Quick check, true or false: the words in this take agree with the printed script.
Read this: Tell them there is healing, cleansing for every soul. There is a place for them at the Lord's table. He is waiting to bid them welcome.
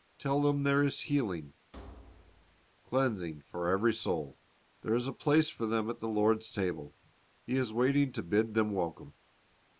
true